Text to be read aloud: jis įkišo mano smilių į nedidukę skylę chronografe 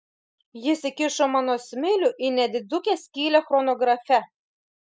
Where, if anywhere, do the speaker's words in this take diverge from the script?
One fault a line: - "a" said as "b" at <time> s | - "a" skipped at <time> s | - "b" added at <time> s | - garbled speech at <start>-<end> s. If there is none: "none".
none